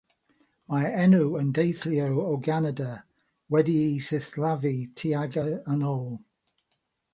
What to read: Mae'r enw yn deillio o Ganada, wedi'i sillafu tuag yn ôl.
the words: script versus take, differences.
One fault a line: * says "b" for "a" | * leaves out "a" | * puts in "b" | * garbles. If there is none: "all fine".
all fine